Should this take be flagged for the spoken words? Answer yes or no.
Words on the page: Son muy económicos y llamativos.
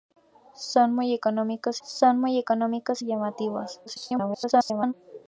yes